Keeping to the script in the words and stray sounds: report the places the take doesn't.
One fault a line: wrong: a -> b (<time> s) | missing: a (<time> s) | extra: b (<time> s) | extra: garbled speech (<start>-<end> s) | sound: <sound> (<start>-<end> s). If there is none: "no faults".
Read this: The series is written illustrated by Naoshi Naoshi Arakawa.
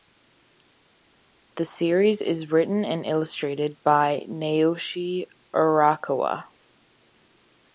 extra: and (2.9 s)
missing: Naoshi (5.3 s)